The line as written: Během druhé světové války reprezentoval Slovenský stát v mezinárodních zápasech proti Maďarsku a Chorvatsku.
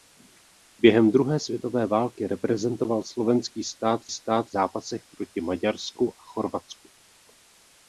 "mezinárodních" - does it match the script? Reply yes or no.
no